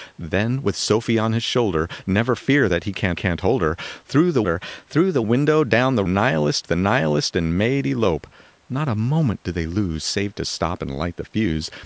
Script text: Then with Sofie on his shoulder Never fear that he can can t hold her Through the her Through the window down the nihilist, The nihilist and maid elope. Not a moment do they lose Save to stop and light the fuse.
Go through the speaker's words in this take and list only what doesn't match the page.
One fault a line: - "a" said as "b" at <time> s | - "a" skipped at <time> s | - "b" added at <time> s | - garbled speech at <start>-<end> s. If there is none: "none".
none